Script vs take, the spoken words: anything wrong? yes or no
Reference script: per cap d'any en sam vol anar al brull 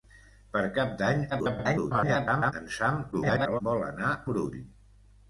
yes